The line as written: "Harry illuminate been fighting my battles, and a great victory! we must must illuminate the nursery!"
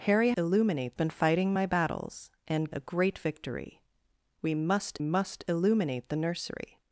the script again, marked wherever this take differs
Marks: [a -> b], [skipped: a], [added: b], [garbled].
"Harry illuminate been fighting my battles, and a great victory! we must must illuminate the nursery!"